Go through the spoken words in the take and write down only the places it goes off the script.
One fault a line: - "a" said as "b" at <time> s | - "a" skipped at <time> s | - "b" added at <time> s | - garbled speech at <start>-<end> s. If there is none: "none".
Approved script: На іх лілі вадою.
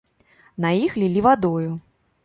none